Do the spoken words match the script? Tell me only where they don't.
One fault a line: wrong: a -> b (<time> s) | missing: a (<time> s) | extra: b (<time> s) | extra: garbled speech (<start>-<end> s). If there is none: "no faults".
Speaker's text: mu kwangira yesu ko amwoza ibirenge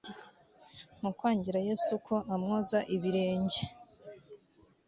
no faults